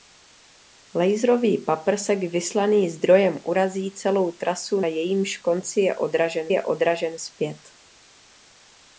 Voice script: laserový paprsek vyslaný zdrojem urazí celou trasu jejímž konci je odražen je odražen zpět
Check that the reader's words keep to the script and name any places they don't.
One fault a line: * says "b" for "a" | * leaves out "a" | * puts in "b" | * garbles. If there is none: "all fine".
all fine